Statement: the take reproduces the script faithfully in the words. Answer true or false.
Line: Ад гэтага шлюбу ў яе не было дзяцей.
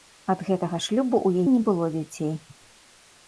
false